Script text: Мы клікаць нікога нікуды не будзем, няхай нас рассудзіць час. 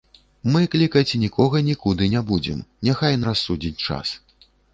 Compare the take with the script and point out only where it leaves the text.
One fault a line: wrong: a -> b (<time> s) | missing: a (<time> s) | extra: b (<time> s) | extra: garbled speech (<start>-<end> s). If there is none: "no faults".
missing: нас (3.2 s)